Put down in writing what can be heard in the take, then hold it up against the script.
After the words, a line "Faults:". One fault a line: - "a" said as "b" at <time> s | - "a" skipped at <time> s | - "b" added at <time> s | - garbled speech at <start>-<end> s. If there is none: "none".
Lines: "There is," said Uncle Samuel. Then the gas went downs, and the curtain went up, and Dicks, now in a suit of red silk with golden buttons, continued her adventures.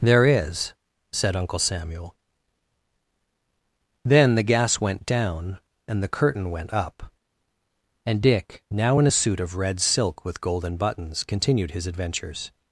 "There is," said Uncle Samuel. Then the gas went down, and the curtain went up, and Dick, now in a suit of red silk with golden buttons, continued his adventures.
Faults:
- "downs" said as "down" at 5.0 s
- "Dicks" said as "Dick" at 8.2 s
- "her" said as "his" at 11.7 s